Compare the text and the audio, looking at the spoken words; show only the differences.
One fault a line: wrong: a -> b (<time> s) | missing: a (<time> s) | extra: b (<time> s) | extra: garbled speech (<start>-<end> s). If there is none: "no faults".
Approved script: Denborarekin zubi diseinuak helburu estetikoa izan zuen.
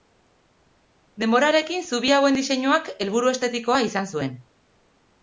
extra: hauen (2.1 s)